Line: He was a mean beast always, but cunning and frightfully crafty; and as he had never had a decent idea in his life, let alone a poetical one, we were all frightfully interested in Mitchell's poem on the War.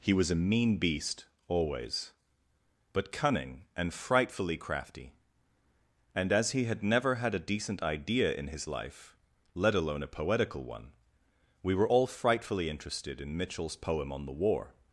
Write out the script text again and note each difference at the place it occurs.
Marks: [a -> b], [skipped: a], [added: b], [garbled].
He was a mean beast always, but cunning and frightfully crafty; and as he had never had a decent idea in his life, let alone a poetical one, we were all frightfully interested in Mitchell's poem on the War.